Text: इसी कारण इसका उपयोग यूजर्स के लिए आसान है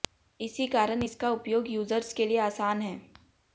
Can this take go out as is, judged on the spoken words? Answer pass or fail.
pass